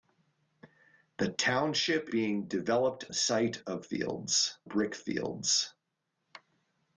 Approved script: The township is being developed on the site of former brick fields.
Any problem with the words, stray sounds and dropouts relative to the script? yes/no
yes